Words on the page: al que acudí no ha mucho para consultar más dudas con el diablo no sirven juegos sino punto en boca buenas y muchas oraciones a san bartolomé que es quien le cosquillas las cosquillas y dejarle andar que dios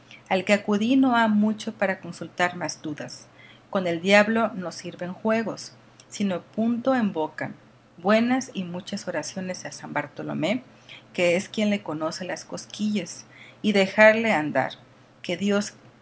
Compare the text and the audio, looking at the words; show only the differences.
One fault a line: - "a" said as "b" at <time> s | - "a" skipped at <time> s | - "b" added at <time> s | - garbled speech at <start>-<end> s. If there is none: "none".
- "cosquillas" said as "conoce" at 11.8 s